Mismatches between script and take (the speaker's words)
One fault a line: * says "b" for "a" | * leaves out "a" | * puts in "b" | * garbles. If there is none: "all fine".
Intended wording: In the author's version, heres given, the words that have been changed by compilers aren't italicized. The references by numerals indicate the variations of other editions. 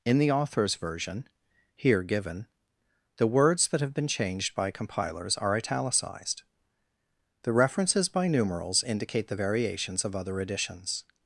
* says "here" for "heres"
* says "are" for "aren't"